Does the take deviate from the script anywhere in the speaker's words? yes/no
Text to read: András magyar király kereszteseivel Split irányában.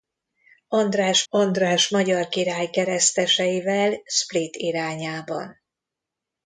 yes